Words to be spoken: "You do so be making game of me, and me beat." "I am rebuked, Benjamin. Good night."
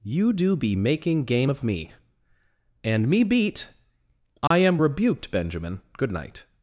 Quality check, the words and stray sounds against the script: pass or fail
fail